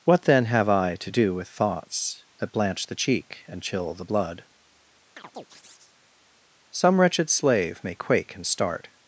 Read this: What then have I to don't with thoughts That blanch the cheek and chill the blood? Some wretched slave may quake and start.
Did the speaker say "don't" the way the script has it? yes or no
no